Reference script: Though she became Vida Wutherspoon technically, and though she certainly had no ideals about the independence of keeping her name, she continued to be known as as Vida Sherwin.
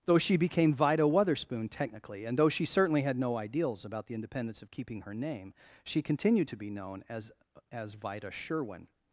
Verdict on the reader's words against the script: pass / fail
pass